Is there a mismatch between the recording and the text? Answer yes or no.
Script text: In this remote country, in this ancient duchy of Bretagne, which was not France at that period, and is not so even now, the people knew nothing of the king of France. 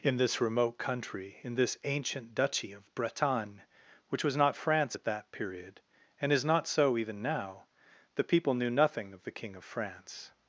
no